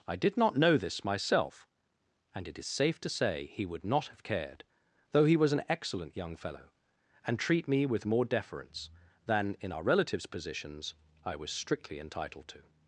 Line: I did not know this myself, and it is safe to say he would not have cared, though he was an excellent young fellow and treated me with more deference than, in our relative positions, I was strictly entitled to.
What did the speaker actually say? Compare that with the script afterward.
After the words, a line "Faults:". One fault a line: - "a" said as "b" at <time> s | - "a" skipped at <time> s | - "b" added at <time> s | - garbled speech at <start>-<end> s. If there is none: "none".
I did not know this myself, and it is safe to say he would not have cared, though he was an excellent young fellow and treat me with more deference than, in our relatives positions, I was strictly entitled to.
Faults:
- "treated" said as "treat" at 7.4 s
- "relative" said as "relatives" at 9.8 s